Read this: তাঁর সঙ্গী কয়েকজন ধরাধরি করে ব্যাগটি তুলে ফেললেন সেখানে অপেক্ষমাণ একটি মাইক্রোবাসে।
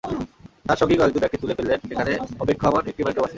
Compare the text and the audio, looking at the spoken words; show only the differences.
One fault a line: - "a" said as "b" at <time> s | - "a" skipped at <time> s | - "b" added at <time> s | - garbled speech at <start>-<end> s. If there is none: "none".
- "ধরাধরি করে" skipped at 1.2 s